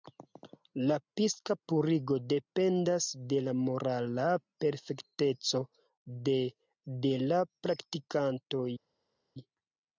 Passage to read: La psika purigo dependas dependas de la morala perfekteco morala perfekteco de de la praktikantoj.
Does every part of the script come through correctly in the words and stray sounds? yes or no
no